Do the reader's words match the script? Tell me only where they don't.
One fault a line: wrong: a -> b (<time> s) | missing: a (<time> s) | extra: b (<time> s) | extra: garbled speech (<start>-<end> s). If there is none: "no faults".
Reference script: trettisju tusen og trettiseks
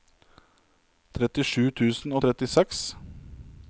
no faults